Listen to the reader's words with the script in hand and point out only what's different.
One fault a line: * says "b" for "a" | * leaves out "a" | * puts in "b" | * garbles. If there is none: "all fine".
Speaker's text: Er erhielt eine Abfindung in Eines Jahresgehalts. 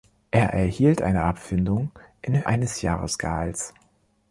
all fine